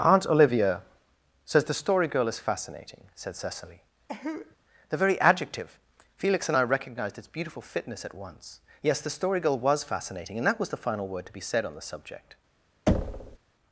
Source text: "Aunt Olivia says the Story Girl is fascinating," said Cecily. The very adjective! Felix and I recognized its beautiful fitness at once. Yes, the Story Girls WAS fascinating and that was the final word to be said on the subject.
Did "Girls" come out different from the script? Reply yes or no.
yes